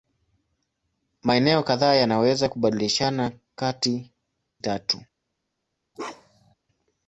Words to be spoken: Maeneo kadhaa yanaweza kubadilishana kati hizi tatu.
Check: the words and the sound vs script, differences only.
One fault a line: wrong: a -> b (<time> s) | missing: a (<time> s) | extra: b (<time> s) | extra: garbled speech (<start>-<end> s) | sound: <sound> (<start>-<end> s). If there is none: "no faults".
missing: hizi (4.1 s)
sound: bark (5.9-6.5 s)